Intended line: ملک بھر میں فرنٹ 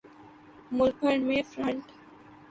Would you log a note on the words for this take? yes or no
no